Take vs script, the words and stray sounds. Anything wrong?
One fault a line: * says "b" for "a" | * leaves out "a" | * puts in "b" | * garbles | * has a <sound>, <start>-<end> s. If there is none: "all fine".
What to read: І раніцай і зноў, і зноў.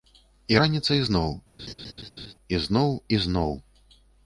* puts in "зноў"
* has a laugh, 1.6-2.3 s